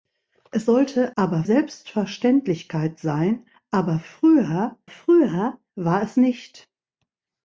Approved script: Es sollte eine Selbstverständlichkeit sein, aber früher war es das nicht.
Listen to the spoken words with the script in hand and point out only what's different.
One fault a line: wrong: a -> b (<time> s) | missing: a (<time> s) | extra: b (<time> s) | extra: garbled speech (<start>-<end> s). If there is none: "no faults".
wrong: eine -> aber (1.2 s)
extra: früher (4.8 s)
missing: das (6.2 s)